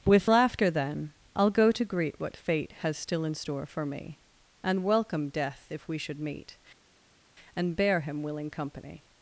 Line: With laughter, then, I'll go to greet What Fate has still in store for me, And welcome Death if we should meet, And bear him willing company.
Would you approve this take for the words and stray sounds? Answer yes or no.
yes